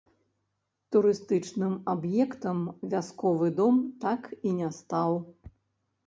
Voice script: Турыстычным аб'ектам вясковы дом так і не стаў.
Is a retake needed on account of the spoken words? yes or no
no